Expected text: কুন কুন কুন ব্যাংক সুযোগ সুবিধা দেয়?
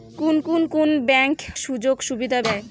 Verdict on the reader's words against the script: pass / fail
pass